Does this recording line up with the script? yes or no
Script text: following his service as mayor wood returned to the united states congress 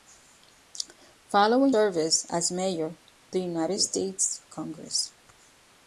no